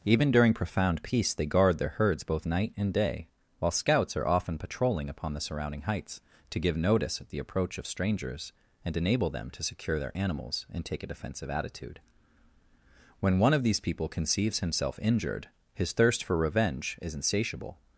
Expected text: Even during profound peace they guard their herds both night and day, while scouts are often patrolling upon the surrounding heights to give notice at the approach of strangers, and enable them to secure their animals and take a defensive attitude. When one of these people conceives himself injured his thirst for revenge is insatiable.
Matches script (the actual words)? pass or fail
pass